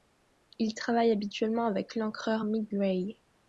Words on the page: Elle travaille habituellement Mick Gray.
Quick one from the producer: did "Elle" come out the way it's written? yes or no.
no